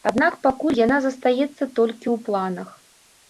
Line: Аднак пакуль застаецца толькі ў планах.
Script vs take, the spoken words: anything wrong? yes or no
yes